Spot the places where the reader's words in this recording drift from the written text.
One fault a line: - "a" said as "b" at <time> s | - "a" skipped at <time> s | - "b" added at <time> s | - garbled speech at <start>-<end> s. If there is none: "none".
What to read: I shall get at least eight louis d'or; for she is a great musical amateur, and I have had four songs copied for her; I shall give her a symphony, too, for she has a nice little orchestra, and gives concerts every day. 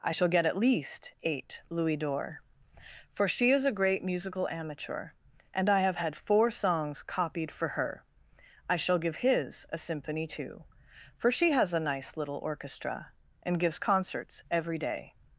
- "her" said as "his" at 9.2 s